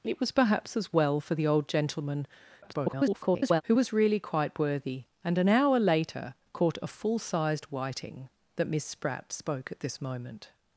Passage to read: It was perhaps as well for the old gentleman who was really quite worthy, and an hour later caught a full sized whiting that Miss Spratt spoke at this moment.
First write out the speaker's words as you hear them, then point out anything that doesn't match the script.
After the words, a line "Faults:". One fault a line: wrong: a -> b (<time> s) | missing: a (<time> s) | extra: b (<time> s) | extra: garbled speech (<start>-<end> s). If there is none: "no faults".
It was perhaps as well for the old gentleman [garbled] who was really quite worthy, and an hour later caught a full sized whiting that Miss Spratt spoke at this moment.
Faults:
extra: garbled speech (2.6-3.6 s)